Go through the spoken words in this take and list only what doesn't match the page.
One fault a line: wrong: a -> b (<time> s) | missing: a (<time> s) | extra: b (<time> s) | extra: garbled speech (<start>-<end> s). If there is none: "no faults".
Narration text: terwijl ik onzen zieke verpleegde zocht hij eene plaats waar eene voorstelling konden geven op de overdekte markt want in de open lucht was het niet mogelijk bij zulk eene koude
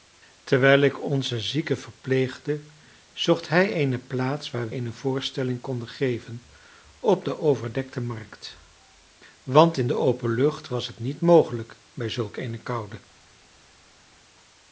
no faults